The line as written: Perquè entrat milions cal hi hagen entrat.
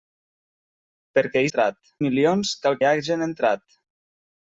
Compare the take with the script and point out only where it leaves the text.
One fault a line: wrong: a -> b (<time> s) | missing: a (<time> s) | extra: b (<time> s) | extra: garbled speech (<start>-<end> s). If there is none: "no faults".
no faults